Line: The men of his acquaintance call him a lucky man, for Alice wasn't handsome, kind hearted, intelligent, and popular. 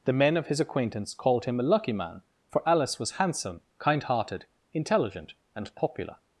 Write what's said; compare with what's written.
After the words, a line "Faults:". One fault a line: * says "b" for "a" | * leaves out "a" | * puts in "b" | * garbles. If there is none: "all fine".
The men of his acquaintance called him a lucky man, for Alice was handsome, kind hearted, intelligent, and popular.
Faults:
* says "called" for "call"
* says "was" for "wasn't"